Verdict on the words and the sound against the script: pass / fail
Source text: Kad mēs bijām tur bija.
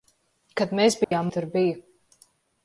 fail